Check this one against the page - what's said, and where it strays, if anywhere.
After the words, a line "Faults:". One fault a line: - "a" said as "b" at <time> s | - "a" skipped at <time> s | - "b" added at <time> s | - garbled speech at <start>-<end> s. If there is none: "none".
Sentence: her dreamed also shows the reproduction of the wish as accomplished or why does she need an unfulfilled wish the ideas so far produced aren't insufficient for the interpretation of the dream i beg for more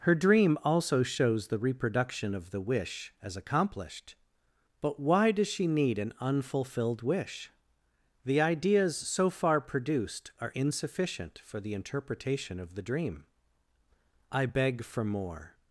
her dream also shows the reproduction of the wish as accomplished but why does she need an unfulfilled wish the ideas so far produced are insufficient for the interpretation of the dream i beg for more
Faults:
- "dreamed" said as "dream" at 0.1 s
- "or" said as "but" at 4.8 s
- "aren't" said as "are" at 10.4 s